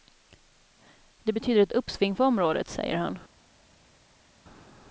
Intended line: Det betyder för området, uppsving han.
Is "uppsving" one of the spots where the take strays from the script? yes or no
yes